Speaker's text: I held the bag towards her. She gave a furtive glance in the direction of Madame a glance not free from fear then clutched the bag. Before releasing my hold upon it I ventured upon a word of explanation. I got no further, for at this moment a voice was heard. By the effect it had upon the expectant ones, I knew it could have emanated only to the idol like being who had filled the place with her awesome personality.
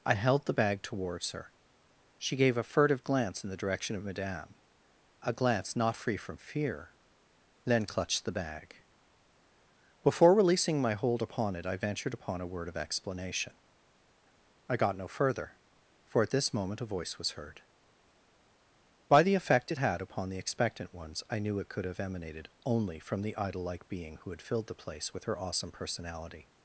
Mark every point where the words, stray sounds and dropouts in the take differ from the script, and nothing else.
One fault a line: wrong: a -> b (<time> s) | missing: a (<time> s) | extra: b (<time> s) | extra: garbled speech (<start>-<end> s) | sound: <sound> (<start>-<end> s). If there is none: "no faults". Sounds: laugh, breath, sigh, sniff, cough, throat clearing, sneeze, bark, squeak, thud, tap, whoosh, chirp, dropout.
wrong: to -> from (23.0 s)